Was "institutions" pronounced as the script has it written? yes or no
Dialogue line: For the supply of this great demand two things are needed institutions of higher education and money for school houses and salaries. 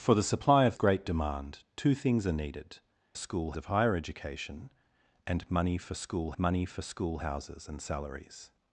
no